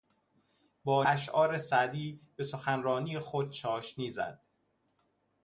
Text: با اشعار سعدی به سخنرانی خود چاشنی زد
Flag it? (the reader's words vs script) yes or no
no